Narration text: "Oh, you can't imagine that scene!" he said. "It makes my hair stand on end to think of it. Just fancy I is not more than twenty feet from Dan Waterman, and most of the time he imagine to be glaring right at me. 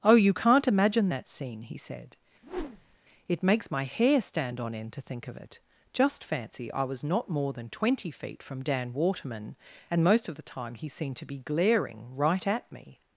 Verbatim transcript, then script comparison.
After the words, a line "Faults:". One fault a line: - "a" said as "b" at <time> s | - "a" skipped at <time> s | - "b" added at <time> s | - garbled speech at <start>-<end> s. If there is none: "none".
"Oh, you can't imagine that scene!" he said. "It makes my hair stand on end to think of it. Just fancy I was not more than twenty feet from Dan Waterman, and most of the time he seemed to be glaring right at me.
Faults:
- "is" said as "was" at 6.8 s
- "imagine" said as "seemed" at 10.9 s